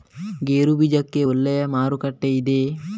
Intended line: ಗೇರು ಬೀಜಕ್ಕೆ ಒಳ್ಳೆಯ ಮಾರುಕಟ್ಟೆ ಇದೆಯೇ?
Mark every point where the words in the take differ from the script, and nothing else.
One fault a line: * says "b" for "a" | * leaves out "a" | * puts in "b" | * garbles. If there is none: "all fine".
all fine